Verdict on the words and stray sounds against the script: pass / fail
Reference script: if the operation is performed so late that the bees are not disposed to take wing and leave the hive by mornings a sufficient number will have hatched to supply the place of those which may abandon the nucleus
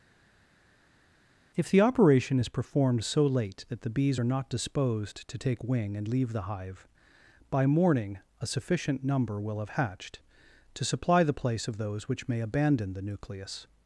fail